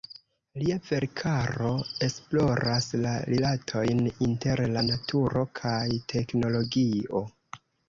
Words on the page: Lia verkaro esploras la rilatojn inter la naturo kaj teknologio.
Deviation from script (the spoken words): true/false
false